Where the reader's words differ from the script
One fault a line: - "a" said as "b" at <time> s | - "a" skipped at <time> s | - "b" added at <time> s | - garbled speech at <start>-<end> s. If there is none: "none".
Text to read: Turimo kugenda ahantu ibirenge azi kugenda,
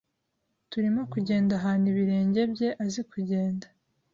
- "bye" added at 2.5 s